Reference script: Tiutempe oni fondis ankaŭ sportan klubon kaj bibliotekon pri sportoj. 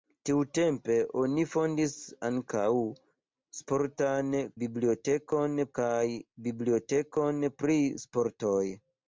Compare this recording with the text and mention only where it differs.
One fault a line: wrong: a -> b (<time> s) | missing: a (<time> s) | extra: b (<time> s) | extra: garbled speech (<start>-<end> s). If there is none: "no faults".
wrong: klubon -> bibliotekon (4.6 s)